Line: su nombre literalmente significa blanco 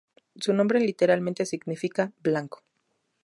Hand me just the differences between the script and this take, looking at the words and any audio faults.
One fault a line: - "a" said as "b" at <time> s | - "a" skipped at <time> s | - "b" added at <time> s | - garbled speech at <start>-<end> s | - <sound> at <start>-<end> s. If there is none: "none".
none